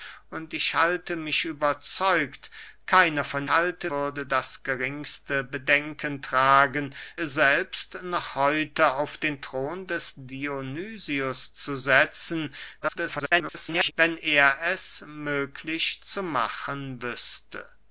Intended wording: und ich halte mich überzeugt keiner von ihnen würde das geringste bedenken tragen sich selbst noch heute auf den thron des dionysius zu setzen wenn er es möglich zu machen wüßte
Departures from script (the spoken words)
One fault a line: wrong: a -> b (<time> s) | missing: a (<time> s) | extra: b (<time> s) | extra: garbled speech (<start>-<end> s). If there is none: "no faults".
wrong: ihnen -> halte (3.5 s)
missing: sich (7.0 s)
extra: garbled speech (12.8-13.9 s)